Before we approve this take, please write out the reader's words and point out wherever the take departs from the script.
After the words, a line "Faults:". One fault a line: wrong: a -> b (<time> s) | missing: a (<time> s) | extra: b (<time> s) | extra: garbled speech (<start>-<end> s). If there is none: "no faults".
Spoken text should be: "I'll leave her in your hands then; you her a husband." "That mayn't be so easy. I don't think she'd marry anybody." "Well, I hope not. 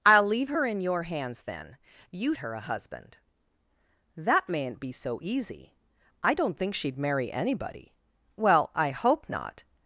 "I'll leave her in your hands then; you her a husband." "That mayn't be so easy. I don't think she'd marry anybody." "Well, I hope not.
Faults:
no faults